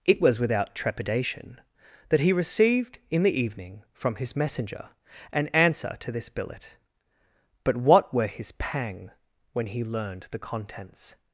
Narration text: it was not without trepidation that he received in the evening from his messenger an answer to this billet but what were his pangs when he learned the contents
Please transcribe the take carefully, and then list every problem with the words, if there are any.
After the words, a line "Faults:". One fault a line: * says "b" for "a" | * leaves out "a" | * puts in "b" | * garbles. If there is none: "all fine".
it was without trepidation that he received in the evening from his messenger an answer to this billet but what were his pang when he learned the contents
Faults:
* leaves out "not"
* says "pang" for "pangs"